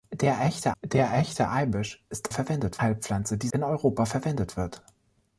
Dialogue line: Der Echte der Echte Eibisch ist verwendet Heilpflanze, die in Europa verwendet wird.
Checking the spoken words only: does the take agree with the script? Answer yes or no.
yes